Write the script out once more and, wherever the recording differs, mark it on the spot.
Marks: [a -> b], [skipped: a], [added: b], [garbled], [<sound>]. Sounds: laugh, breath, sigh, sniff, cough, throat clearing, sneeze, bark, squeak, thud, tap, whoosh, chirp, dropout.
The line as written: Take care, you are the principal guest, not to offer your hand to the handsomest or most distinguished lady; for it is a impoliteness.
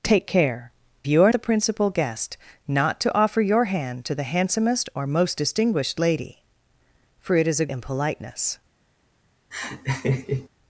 Take care, you are the principal guest, not to offer your hand to the handsomest or most distinguished lady; for it is a impoliteness. [laugh]